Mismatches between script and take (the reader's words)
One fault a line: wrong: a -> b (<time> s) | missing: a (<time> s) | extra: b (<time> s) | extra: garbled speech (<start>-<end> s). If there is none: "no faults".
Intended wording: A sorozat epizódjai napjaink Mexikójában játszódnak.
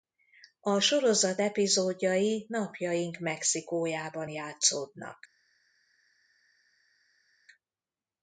no faults